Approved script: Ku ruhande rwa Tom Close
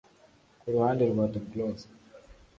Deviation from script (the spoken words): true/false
false